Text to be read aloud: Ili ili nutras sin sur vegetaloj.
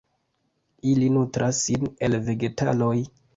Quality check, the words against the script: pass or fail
fail